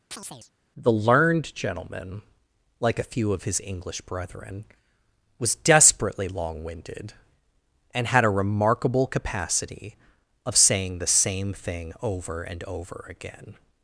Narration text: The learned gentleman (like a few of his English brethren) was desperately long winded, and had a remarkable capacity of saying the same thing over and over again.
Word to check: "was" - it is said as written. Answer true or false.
true